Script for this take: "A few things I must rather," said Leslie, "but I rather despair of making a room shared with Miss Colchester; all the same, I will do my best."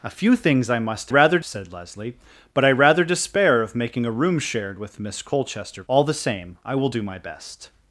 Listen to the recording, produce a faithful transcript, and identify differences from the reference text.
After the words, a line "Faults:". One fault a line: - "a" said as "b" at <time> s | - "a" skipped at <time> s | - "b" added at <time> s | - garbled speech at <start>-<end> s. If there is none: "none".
"A few things I must rather," said Leslie, "but I rather despair of making a room shared with Miss Colchester; all the same, I will do my best."
Faults:
none